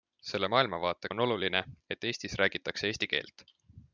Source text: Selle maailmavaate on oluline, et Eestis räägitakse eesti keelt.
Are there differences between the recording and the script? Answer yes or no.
no